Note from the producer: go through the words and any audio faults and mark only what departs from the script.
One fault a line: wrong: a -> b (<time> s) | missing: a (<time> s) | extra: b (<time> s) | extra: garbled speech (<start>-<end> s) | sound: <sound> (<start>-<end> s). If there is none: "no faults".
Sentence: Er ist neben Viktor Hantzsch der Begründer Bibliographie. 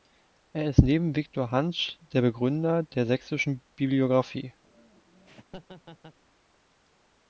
extra: der Sächsischen (2.9 s)
sound: laugh (4.6-6.2 s)